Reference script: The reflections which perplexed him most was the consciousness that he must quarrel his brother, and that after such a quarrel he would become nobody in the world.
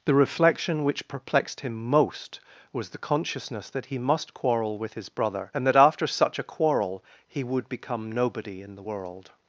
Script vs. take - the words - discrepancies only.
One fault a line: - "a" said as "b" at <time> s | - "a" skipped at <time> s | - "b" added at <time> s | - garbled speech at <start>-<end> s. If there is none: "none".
- "reflections" said as "reflection" at 0.1 s
- "with" added at 4.8 s